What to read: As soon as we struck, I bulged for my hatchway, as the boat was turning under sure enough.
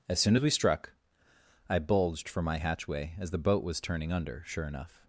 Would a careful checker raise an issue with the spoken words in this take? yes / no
no